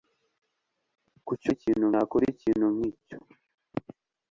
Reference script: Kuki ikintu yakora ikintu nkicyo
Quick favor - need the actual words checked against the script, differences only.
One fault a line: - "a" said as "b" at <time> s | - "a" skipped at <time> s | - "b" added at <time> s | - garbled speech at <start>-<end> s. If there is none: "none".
none